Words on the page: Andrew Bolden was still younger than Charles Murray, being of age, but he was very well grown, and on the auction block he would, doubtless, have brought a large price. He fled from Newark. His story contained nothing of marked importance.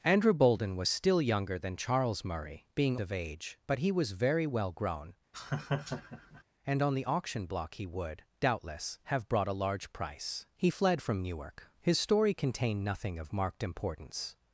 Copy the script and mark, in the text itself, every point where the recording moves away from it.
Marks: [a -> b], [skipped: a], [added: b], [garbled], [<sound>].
Andrew Bolden was still younger than Charles Murray, being of age, but he was very well grown, [laugh] and on the auction block he would, doubtless, have brought a large price. He fled from Newark. His story contained nothing of marked importance.